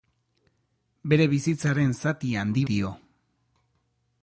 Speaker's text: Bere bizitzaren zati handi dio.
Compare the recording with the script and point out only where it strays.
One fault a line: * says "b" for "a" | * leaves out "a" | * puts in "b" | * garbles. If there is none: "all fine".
all fine